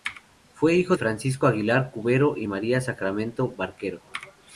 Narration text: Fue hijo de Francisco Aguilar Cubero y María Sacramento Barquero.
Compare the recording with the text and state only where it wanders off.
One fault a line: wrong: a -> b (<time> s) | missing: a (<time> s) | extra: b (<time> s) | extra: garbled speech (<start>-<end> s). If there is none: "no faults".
missing: de (0.9 s)